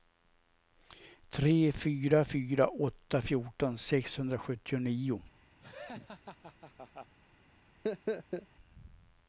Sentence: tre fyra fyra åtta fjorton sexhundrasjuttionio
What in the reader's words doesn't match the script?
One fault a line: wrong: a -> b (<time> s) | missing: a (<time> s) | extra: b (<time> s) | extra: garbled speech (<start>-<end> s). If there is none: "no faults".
no faults